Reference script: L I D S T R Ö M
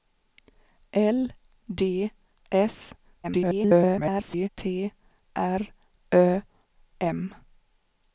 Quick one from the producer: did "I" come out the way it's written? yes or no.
no